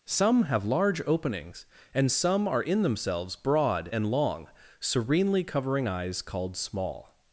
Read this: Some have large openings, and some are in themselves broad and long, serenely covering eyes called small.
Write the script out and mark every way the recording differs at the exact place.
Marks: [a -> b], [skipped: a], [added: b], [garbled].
Some have large openings, and some are in themselves broad and long, serenely covering eyes called small.